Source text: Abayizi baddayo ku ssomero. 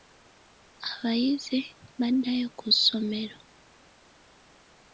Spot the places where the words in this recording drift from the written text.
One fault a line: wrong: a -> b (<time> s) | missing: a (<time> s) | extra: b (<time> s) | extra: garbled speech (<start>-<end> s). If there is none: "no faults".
no faults